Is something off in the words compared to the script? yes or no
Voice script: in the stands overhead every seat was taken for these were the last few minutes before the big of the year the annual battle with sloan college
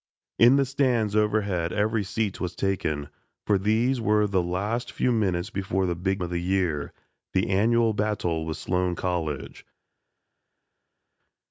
no